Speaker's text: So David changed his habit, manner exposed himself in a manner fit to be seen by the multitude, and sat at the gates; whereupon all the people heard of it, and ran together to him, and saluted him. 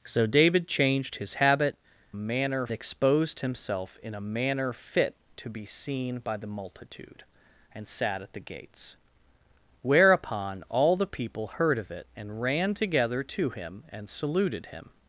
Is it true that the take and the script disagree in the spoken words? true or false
false